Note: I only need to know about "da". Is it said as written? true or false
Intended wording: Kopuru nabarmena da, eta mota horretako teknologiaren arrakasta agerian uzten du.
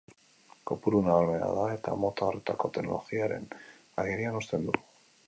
true